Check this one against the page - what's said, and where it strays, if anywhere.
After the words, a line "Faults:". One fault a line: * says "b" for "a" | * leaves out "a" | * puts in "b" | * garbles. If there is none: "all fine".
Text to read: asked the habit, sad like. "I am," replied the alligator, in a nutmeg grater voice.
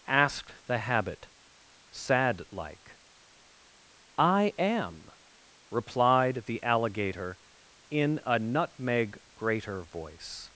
asked the habit, sad like. "I am," replied the alligator, in a nutmeg grater voice.
Faults:
all fine